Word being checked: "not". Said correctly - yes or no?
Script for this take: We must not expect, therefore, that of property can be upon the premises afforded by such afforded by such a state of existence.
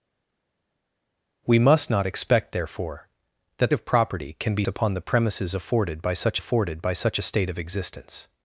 yes